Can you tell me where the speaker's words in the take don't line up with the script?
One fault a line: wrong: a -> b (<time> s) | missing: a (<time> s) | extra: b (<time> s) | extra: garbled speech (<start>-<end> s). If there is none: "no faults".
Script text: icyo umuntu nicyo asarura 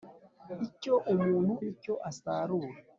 no faults